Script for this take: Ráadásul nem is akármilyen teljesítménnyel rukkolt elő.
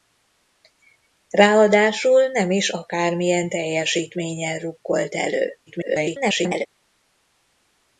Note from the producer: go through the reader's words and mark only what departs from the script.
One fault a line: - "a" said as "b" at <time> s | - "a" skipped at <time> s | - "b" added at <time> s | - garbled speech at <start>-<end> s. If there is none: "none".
- garbled speech at 5.7-6.7 s